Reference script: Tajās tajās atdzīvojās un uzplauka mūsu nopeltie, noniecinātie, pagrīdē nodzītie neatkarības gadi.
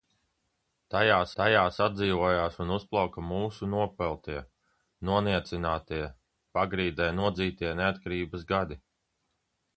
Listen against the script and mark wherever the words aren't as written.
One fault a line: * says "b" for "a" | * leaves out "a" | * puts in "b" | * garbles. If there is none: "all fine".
all fine